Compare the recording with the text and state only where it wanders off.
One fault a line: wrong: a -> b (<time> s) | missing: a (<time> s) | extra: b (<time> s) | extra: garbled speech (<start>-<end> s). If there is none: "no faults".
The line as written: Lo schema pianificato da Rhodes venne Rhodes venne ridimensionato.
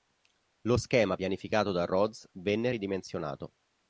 missing: Rhodes venne (2.7 s)